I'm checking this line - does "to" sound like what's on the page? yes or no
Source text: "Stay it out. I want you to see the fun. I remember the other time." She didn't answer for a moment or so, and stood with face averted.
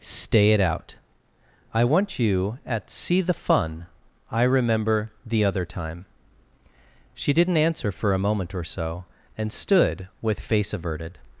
no